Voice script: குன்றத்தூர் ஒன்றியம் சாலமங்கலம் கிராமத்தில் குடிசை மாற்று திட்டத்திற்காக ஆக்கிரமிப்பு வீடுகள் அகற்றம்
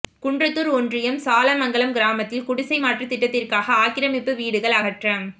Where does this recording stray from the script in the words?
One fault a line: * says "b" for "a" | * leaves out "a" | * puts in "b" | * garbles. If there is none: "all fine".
all fine